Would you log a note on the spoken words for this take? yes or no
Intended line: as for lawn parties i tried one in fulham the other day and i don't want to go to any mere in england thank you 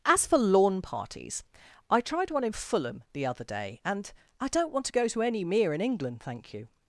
no